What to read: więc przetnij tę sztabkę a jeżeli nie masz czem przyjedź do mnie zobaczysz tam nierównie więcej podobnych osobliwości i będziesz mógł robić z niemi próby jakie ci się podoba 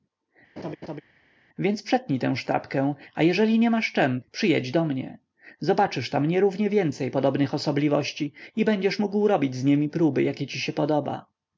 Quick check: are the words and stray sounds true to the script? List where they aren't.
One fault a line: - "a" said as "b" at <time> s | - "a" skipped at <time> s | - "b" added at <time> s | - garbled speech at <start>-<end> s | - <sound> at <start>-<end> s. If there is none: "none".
- laugh at 0.6-1.0 s